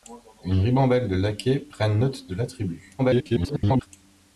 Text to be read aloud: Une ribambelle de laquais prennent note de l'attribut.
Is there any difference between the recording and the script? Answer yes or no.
yes